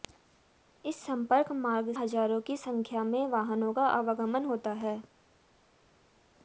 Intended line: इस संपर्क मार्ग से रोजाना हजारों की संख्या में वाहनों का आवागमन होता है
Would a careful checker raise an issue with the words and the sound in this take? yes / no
yes